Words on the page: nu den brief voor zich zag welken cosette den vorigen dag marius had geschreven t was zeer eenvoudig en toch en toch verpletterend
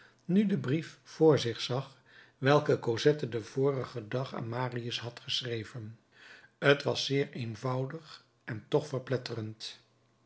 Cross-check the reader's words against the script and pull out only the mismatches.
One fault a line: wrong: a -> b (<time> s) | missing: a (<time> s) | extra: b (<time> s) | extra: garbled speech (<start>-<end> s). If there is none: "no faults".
extra: aan (4.3 s)
missing: en toch (8.9 s)